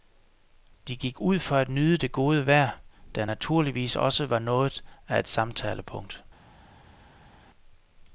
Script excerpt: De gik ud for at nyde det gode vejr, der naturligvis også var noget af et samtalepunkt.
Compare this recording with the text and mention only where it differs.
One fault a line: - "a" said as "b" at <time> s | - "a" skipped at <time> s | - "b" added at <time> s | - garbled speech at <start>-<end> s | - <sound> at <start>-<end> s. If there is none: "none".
none